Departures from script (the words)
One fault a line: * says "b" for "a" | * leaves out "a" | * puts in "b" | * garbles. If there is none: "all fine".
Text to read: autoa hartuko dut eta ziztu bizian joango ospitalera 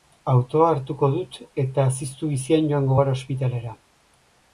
* puts in "gara"